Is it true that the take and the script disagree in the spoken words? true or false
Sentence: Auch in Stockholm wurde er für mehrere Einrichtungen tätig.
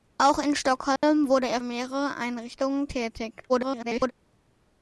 true